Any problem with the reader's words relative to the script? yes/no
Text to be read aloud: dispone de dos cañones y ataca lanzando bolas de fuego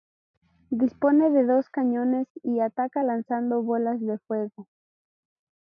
no